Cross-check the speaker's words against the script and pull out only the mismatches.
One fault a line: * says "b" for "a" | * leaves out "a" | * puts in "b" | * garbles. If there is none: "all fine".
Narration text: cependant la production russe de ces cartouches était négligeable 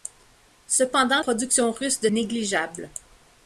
* leaves out "la"
* leaves out "ces cartouches était"